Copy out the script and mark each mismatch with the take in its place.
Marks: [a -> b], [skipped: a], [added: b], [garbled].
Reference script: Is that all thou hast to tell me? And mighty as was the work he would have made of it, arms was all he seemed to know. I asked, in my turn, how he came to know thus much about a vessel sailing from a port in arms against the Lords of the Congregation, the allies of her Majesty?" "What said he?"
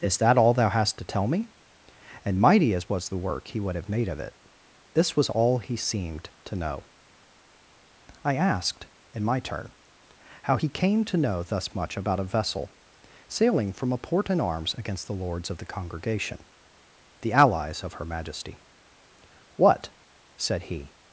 Is that all thou hast to tell me? And mighty as was the work he would have made of it, [arms -> this] was all he seemed to know. I asked, in my turn, how he came to know thus much about a vessel sailing from a port in arms against the Lords of the Congregation, the allies of her Majesty?" "What said he?"